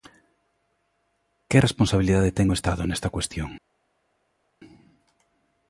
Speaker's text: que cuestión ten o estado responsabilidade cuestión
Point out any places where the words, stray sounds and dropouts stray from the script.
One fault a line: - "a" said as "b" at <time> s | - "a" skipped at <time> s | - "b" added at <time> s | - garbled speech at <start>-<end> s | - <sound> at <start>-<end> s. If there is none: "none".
- "cuestión" said as "responsabilidade" at 1.7 s
- "responsabilidade" said as "nesta" at 2.8 s